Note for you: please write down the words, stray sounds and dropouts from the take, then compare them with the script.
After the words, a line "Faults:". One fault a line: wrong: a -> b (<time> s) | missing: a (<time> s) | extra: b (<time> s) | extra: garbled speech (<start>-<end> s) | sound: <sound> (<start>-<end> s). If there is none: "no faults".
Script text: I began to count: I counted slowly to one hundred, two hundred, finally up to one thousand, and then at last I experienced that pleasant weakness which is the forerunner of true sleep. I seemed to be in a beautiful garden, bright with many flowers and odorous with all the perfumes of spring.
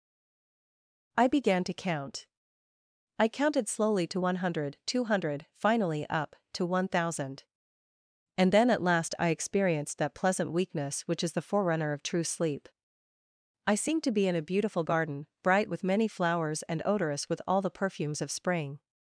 I began to count: I counted slowly to one hundred, two hundred, finally up to one thousand, and then at last I experienced that pleasant weakness which is the forerunner of true sleep. I seemed to be in a beautiful garden, bright with many flowers and odorous with all the perfumes of spring.
Faults:
no faults